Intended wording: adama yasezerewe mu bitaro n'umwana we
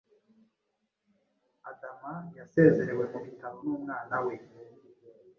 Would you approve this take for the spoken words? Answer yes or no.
yes